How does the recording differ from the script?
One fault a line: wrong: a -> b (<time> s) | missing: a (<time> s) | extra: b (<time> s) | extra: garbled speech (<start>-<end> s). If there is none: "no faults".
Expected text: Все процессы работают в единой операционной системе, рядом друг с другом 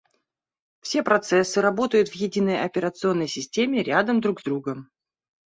no faults